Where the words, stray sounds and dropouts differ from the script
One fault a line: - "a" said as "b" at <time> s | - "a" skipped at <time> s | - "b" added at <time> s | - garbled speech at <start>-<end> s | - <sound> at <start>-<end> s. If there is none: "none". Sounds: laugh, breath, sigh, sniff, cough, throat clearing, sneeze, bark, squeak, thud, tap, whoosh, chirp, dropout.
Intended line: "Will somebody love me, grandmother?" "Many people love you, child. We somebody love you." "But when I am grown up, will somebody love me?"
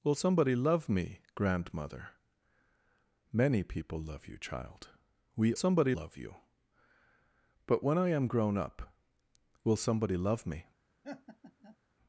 - laugh at 11.0-11.8 s